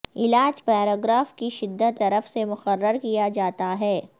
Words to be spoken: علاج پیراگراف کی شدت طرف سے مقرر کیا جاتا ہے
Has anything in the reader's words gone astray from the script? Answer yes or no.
no